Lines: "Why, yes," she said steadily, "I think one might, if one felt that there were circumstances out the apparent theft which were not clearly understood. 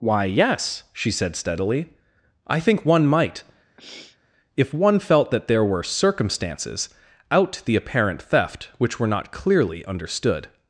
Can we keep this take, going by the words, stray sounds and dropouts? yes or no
no